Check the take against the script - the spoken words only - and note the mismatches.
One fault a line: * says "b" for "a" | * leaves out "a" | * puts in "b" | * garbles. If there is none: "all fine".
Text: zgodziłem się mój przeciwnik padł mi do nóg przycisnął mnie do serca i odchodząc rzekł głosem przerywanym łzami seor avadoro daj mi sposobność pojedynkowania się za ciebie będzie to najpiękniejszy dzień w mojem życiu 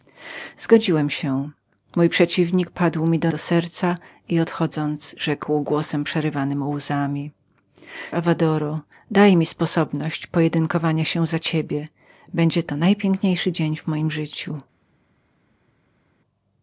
* leaves out "nóg przycisnął mnie"
* leaves out "seor"